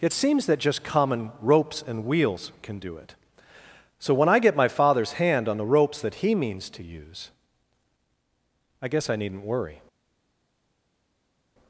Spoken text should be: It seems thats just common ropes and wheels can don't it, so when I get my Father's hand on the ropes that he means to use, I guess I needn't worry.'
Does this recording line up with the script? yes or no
no